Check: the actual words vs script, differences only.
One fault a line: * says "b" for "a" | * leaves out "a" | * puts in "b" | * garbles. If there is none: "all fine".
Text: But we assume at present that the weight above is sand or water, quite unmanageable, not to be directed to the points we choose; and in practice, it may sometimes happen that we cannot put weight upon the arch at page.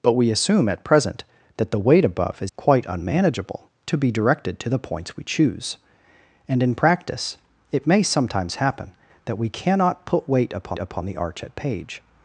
* leaves out "sand or water"
* leaves out "not"
* puts in "upon"